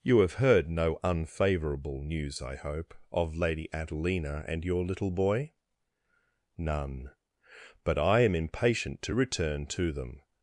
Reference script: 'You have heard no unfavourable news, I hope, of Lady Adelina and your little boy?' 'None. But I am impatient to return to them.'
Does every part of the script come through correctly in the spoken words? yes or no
yes